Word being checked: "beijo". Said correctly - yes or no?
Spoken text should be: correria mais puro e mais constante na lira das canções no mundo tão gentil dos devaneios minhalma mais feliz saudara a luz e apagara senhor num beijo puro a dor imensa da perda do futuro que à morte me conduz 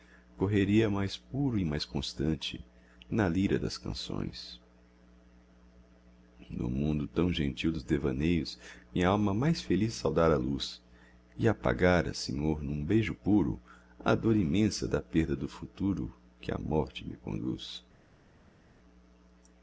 yes